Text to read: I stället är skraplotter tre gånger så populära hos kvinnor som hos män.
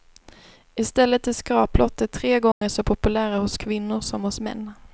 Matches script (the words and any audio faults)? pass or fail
fail